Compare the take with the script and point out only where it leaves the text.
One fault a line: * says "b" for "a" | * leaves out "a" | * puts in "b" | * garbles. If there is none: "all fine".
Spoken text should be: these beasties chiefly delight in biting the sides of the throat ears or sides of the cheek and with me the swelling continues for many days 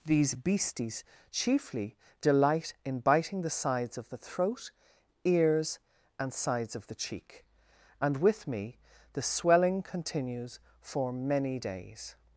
* says "and" for "or"